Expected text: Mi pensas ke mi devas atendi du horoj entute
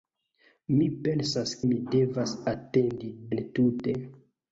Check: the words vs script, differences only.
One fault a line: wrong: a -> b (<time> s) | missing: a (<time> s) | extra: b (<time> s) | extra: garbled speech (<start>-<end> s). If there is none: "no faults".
missing: ke (1.6 s)
missing: du horoj (3.1 s)